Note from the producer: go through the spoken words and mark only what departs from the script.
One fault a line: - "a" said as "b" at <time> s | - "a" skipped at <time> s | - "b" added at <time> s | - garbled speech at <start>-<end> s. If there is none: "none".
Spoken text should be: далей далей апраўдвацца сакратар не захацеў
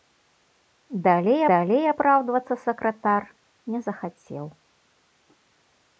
none